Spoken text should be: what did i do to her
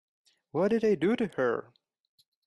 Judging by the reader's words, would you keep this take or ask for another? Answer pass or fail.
pass